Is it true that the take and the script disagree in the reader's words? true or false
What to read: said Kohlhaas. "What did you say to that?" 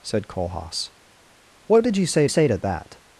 true